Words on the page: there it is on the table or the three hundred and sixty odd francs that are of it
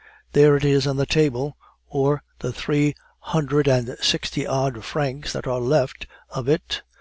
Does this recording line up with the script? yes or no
no